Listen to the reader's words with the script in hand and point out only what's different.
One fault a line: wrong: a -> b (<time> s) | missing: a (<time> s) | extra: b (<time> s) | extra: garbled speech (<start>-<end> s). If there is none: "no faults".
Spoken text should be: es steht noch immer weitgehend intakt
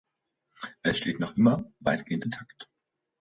no faults